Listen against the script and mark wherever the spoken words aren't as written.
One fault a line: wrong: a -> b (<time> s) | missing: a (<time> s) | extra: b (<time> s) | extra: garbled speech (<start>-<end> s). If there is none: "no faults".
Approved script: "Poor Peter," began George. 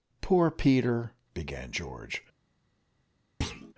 no faults